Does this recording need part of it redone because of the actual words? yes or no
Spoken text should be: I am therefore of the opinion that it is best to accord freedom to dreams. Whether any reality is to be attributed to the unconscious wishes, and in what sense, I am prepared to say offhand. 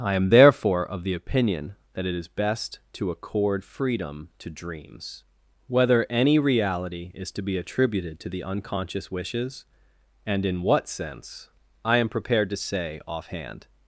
no